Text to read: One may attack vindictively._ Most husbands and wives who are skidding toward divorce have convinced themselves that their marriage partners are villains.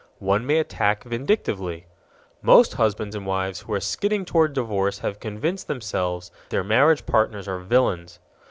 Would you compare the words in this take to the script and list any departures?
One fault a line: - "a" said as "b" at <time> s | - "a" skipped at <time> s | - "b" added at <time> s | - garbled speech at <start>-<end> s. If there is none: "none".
- "that" skipped at 6.3 s